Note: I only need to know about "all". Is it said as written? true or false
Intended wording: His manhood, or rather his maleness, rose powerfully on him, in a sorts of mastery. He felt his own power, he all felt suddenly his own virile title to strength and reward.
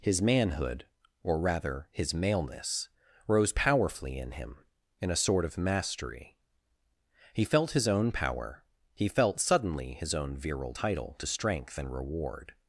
false